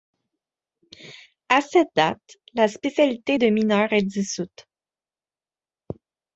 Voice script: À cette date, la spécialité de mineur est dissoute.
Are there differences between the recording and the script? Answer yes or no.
no